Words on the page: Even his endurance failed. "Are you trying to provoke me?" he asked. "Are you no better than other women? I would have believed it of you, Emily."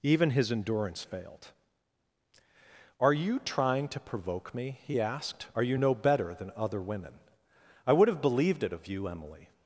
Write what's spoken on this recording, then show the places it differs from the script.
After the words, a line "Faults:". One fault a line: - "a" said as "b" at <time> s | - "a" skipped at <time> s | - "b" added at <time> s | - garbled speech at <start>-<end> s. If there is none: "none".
Even his endurance failed. "Are you trying to provoke me?" he asked. "Are you no better than other women? I would have believed it of you, Emily."
Faults:
none